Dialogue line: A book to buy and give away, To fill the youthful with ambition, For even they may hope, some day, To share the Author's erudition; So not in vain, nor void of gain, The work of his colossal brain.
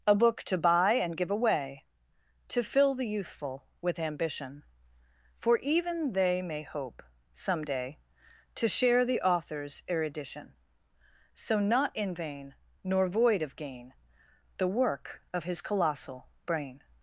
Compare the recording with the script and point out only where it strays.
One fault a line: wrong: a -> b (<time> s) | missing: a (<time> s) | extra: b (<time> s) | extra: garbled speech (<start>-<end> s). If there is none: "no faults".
no faults